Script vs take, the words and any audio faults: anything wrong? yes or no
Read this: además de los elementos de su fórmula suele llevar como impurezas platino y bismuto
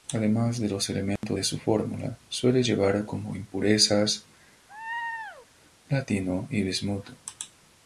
yes